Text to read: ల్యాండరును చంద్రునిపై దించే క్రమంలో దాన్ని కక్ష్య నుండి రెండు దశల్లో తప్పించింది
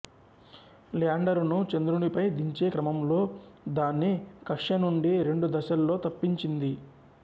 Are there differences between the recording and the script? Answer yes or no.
no